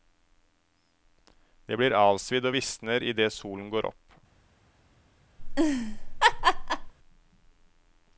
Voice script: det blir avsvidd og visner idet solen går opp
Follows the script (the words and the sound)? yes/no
no